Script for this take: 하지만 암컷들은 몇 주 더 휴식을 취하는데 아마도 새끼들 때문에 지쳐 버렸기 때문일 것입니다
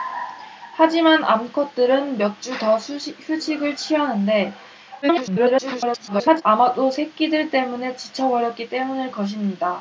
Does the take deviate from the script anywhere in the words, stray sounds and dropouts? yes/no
yes